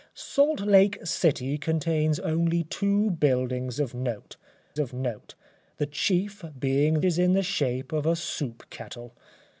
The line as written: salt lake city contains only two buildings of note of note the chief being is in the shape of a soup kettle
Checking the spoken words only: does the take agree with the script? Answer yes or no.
yes